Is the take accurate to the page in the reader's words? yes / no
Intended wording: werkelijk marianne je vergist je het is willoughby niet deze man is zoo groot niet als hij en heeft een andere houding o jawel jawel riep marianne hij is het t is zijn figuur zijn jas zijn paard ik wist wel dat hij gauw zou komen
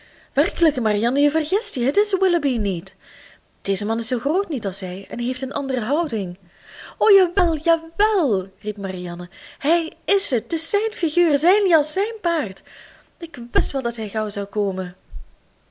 yes